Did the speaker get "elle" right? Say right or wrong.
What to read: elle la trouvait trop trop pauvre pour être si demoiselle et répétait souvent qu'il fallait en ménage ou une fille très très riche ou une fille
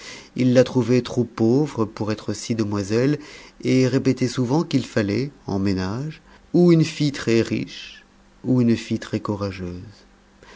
wrong